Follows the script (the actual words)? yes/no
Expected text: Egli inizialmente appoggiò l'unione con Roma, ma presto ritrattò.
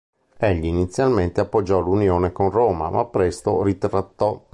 yes